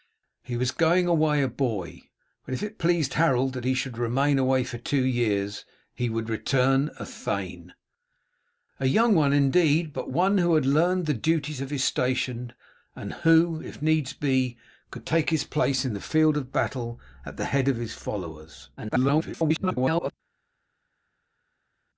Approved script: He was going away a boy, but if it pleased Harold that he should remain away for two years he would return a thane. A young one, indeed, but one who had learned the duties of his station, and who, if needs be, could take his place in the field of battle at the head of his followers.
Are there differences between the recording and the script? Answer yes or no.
yes